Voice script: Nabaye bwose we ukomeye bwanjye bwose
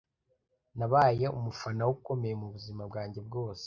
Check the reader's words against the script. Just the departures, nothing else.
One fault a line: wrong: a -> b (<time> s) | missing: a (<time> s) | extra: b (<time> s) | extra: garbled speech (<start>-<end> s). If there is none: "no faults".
wrong: bwose -> umufana (1.4 s)
extra: mubuzima (2.4 s)